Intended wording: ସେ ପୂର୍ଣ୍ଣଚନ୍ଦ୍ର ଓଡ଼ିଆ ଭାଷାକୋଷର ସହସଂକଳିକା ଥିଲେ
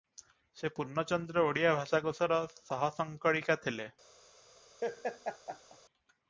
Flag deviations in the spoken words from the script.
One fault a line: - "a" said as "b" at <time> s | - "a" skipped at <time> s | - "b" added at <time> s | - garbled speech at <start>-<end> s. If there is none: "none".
none